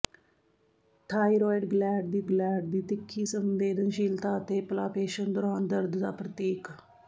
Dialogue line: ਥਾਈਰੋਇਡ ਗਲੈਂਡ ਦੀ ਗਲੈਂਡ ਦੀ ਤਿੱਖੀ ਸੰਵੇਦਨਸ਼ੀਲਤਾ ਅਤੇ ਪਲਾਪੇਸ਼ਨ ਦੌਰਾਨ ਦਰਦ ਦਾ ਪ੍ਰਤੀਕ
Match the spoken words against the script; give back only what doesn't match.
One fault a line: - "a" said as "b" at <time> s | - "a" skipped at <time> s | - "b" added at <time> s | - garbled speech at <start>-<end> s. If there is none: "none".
none